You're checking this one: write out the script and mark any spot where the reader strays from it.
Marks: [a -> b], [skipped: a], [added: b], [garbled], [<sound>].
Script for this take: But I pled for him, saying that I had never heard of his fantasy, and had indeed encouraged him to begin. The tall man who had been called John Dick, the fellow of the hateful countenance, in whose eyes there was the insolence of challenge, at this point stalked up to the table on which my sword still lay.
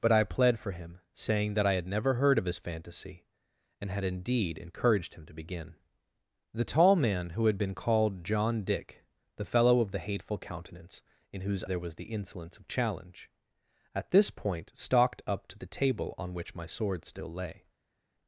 But I pled for him, saying that I had never heard of his fantasy, and had indeed encouraged him to begin. The tall man who had been called John Dick, the fellow of the hateful countenance, in whose [skipped: eyes] there was the insolence of challenge, at this point stalked up to the table on which my sword still lay.